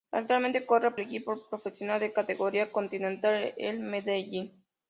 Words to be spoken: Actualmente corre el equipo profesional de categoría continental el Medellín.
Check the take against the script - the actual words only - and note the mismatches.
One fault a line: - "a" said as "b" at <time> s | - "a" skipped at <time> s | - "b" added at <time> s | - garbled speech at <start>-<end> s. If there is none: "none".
none